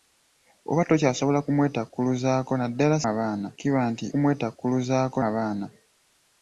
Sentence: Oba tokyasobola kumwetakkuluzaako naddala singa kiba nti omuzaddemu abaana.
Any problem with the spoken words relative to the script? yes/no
yes